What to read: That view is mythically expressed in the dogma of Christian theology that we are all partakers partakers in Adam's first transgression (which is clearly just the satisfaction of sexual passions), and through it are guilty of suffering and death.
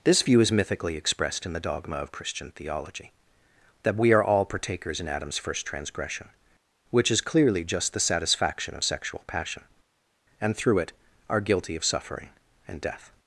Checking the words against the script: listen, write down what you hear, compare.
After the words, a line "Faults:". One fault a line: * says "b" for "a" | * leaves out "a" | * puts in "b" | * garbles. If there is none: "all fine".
This view is mythically expressed in the dogma of Christian theology that we are all partakers in Adam's first transgression (which is clearly just the satisfaction of sexual passion), and through it are guilty of suffering and death.
Faults:
* says "This" for "That"
* leaves out "partakers"
* says "passion" for "passions"